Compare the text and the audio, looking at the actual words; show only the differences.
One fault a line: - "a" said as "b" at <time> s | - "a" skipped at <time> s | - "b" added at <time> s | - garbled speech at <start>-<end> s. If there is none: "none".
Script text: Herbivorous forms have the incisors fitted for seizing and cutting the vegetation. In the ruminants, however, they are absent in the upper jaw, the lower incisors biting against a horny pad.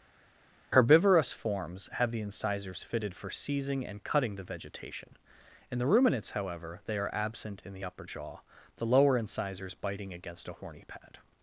none